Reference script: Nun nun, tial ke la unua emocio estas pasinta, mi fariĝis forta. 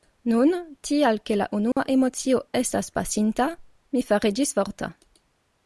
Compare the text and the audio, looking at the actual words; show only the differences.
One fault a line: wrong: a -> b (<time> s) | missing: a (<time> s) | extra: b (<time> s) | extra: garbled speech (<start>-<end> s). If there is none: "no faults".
missing: nun (0.5 s)